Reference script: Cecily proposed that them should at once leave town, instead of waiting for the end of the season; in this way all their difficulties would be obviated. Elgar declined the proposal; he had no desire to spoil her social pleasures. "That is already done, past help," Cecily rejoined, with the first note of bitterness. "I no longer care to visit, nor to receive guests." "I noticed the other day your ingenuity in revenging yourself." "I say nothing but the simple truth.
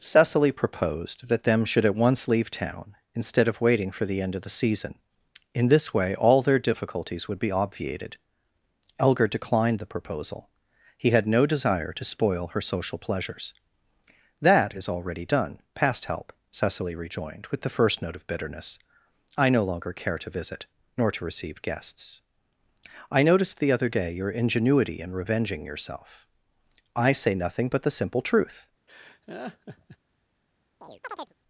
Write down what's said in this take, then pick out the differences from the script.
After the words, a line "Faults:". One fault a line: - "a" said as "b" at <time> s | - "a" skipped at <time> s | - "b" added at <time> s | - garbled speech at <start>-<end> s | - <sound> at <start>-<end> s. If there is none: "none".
Cecily proposed that them should at once leave town, instead of waiting for the end of the season; in this way all their difficulties would be obviated. Elgar declined the proposal; he had no desire to spoil her social pleasures. "That is already done, past help," Cecily rejoined, with the first note of bitterness. "I no longer care to visit, nor to receive guests." "I noticed the other day your ingenuity in revenging yourself." "I say nothing but the simple truth.
Faults:
- laugh at 28.9-30.0 s
- chirp at 30.8-31.3 s